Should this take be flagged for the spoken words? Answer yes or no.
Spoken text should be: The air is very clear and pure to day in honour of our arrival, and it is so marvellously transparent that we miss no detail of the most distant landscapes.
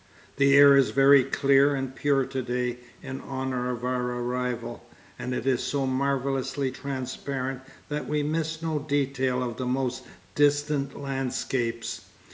no